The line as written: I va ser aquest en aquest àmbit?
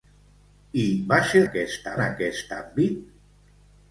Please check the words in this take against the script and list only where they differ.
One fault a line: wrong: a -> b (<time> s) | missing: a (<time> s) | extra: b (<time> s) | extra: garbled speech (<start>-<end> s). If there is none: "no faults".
no faults